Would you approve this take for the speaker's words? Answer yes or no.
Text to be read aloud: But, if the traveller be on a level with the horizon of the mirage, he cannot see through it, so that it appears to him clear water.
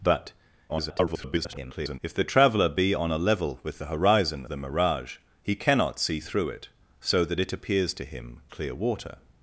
no